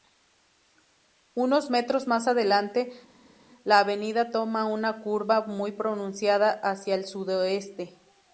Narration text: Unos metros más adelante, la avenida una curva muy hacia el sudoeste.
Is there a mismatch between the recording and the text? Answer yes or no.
yes